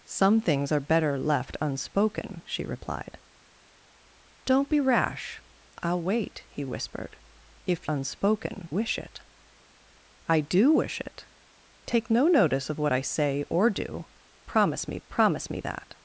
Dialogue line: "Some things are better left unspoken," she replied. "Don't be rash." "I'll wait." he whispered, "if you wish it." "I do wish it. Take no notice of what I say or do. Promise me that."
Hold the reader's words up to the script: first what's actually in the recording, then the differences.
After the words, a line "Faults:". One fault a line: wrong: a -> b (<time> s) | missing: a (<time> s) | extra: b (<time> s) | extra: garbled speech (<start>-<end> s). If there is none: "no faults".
"Some things are better left unspoken," she replied. "Don't be rash." "I'll wait." he whispered, "if unspoken wish it." "I do wish it. Take no notice of what I say or do. Promise me promise me that."
Faults:
wrong: you -> unspoken (7.9 s)
extra: promise me (15.1 s)